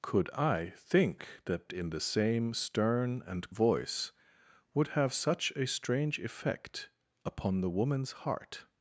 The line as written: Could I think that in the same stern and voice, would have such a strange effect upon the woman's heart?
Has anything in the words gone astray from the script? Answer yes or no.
no